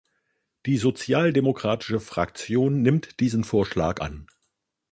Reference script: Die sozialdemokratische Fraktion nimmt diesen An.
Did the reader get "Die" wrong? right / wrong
right